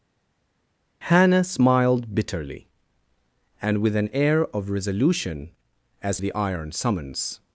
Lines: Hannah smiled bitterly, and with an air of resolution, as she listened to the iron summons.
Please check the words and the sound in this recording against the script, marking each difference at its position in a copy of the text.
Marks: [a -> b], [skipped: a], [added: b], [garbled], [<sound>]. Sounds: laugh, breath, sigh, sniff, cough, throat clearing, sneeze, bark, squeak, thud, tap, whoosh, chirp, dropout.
Hannah smiled bitterly, and with an air of resolution, as [skipped: she listened to] the iron summons.